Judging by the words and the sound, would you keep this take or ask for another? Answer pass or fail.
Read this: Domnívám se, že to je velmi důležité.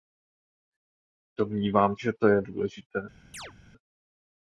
fail